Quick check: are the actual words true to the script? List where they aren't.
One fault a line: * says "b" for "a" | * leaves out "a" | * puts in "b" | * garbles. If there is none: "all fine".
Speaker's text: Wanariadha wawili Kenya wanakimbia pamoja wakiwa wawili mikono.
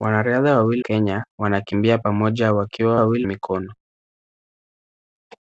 all fine